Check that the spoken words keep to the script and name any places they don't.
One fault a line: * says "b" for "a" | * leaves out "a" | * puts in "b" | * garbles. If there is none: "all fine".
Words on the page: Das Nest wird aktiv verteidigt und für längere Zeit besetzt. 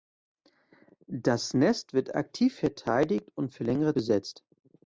* leaves out "Zeit"